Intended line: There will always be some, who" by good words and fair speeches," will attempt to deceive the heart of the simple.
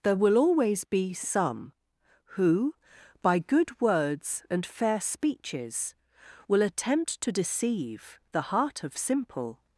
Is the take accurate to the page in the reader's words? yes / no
no